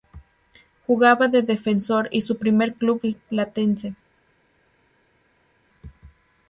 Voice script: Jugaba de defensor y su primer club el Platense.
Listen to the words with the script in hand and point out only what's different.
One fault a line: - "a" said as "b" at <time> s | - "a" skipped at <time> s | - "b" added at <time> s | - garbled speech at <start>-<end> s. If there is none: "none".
none